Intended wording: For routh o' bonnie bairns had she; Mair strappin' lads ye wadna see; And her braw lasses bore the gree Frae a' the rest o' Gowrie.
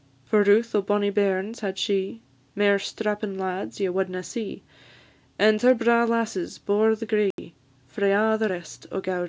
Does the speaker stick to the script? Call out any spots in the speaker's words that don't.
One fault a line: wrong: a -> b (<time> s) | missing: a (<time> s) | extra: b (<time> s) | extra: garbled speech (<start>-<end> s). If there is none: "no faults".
no faults